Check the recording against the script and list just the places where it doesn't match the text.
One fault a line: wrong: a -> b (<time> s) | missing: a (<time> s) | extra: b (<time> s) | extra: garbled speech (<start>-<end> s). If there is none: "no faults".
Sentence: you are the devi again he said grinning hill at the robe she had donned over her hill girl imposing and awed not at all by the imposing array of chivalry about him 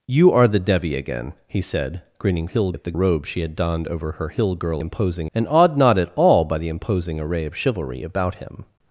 no faults